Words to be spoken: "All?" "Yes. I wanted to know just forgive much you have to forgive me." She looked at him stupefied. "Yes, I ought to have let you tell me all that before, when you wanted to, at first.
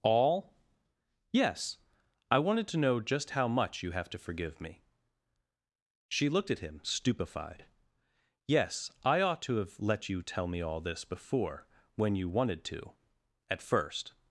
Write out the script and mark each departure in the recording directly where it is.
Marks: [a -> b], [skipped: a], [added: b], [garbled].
"All?" "Yes. I wanted to know just [forgive -> how] much you have to forgive me." She looked at him stupefied. "Yes, I ought to have let you tell me all [that -> this] before, when you wanted to, at first.